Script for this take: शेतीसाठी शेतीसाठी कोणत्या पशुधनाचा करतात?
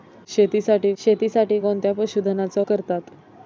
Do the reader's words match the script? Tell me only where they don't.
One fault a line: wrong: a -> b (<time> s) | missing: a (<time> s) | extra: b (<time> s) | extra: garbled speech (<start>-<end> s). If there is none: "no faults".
no faults